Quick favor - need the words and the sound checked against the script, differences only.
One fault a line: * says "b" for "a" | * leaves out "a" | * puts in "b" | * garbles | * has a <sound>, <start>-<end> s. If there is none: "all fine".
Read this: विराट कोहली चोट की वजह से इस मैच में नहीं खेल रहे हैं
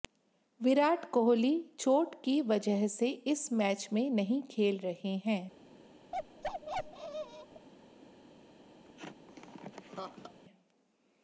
* has a bark, 6.1-7.7 s
* has a laugh, 8.8-10.4 s